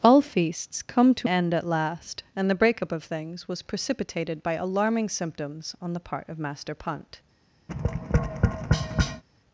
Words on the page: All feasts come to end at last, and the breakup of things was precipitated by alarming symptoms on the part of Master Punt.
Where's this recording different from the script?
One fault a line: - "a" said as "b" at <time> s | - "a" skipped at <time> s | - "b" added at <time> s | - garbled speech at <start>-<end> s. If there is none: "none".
none